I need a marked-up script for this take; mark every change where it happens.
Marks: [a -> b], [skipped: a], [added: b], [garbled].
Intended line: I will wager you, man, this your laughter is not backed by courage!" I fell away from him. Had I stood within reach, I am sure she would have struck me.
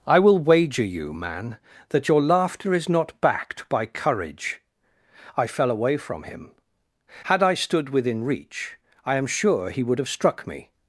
I will wager you, man, [this -> that] your laughter is not backed by courage!" I fell away from him. Had I stood within reach, I am sure [she -> he] would have struck me.